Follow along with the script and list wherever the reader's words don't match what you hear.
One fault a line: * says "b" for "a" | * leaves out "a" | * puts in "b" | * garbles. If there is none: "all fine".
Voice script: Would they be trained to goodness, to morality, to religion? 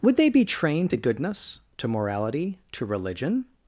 all fine